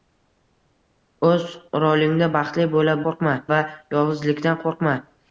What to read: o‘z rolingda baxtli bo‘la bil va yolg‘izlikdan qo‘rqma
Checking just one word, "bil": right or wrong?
wrong